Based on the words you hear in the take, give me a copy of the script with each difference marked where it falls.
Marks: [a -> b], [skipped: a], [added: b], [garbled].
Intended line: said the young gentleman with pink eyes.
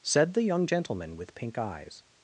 said the young gentleman with pink eyes.